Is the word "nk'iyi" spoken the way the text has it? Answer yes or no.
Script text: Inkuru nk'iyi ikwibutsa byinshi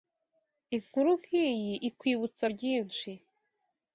yes